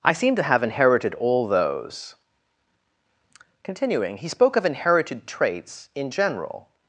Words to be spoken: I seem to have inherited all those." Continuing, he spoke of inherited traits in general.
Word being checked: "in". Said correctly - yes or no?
yes